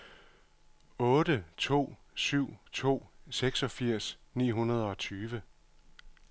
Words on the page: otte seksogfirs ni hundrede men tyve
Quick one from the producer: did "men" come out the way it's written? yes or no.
no